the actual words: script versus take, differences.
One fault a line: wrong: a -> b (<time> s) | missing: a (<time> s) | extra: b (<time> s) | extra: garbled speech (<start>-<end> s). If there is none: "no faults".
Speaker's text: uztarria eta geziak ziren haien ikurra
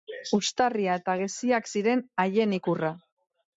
no faults